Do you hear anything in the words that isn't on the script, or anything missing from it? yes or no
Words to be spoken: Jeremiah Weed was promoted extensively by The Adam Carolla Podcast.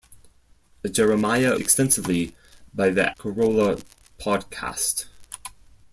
yes